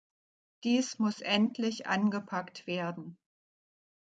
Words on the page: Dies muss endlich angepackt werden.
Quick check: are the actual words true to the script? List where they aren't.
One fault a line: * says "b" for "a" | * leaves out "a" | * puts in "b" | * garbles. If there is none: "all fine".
all fine